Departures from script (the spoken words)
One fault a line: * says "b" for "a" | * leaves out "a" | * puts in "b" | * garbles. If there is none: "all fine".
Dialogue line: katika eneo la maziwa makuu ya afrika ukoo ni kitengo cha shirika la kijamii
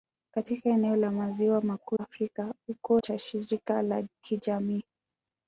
* leaves out "ya"
* leaves out "ni kitengo"